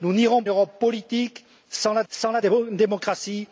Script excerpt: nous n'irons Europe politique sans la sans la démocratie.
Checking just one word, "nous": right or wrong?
right